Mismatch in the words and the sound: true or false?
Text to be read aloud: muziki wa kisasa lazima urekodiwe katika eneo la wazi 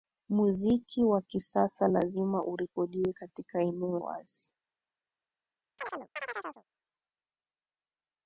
true